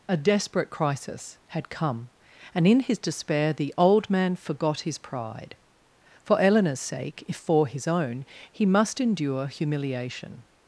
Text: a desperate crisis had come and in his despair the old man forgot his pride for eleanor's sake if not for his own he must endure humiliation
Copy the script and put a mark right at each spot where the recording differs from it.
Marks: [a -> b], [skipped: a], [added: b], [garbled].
a desperate crisis had come and in his despair the old man forgot his pride for eleanor's sake if [skipped: not] for his own he must endure humiliation